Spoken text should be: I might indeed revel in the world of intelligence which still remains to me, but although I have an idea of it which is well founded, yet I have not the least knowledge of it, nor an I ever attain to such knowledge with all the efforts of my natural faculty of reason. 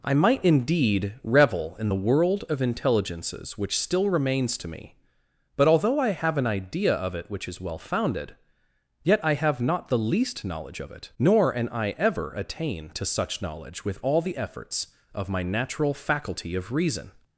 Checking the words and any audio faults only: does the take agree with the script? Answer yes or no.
no